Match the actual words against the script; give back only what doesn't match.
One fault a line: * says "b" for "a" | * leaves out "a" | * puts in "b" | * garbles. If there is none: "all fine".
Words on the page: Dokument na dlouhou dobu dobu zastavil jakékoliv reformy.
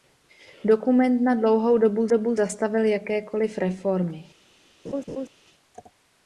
all fine